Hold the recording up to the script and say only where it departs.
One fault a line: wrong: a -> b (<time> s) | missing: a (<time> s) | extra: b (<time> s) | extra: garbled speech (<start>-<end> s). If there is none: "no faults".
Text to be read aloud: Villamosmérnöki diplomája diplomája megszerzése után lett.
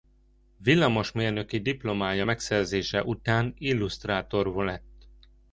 missing: diplomája (2.2 s)
extra: illusztrátor (3.6 s)